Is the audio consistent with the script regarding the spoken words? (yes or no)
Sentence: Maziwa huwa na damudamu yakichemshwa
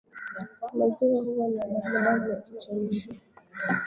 yes